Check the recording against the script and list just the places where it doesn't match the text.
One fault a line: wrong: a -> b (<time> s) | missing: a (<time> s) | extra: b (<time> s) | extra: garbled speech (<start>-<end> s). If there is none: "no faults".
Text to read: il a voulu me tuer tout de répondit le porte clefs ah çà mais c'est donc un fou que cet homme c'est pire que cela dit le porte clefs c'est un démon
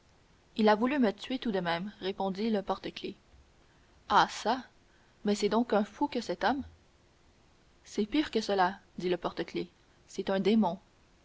extra: même (1.6 s)